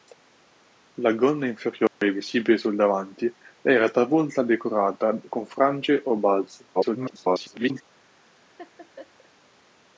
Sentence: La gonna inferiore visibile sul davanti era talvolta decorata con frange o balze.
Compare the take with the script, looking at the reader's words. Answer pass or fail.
fail